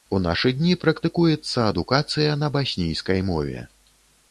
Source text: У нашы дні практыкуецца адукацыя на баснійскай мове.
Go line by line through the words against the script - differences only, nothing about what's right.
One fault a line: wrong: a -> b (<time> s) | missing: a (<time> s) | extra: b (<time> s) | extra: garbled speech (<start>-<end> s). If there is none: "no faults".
no faults